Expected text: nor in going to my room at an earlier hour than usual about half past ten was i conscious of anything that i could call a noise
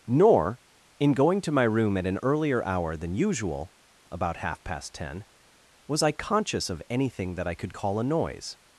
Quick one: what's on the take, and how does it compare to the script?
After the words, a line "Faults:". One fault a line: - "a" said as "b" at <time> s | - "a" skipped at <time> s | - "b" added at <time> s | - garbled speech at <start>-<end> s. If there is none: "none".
nor in going to my room at an earlier hour than usual about half past ten was i conscious of anything that i could call a noise
Faults:
none